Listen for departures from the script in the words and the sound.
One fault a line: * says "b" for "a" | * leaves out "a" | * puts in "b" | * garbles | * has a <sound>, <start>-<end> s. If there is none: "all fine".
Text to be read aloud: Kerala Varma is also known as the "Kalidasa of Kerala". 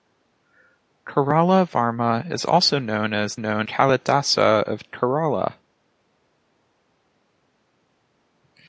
* says "known" for "the"